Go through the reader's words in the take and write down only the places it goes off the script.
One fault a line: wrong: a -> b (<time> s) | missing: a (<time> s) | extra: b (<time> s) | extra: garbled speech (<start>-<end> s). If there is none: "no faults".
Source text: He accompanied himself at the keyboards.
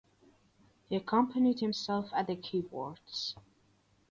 no faults